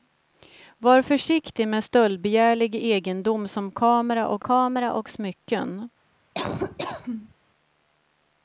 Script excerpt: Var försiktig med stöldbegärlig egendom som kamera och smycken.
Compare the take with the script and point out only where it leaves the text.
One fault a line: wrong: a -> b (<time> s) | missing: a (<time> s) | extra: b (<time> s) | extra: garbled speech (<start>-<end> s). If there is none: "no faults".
extra: kamera och (4.4 s)